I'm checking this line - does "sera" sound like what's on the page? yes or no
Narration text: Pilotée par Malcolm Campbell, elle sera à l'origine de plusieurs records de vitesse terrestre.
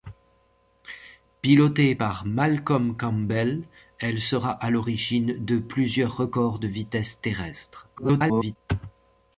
yes